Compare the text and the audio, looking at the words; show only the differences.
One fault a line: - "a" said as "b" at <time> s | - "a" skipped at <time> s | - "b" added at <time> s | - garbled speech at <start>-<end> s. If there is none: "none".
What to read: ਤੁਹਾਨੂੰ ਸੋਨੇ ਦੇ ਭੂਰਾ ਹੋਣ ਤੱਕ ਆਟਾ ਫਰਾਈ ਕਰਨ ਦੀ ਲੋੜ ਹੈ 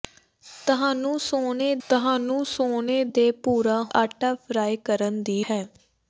- "ਤੁਹਾਨੂੰ ਸੋਨੇ" added at 1.8 s
- "ਹੋਣ ਤੱਕ" skipped at 3.8 s
- "ਲੋੜ" skipped at 5.4 s